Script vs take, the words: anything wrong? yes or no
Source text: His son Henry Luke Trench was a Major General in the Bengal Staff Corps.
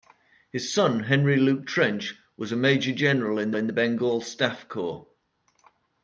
yes